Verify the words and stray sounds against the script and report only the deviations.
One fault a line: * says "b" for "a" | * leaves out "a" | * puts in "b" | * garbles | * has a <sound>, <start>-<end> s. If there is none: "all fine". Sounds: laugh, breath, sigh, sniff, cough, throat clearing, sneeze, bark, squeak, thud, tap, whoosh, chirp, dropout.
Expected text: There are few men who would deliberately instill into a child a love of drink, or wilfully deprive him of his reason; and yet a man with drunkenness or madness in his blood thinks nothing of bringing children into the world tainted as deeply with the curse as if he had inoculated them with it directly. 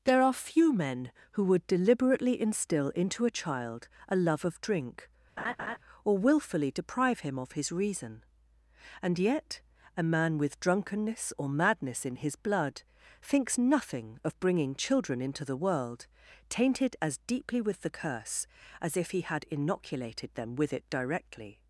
* has a laugh, 5.4-5.8 s